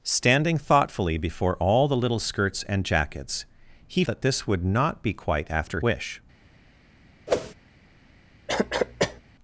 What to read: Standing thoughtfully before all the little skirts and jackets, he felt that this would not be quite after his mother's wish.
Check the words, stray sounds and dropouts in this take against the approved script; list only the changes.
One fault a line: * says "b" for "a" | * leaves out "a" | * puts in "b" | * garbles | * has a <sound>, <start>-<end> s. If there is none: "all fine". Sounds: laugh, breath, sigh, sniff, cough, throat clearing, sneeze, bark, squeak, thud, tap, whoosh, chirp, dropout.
* leaves out "felt"
* leaves out "his mother's"
* has a whoosh, 7.3-7.5 s
* has a cough, 8.5-9.2 s